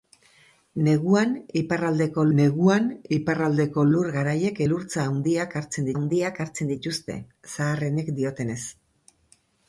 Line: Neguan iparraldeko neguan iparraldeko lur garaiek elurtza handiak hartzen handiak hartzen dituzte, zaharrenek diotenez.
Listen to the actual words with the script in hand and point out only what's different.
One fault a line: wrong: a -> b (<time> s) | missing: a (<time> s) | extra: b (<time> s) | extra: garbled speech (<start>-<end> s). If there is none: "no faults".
no faults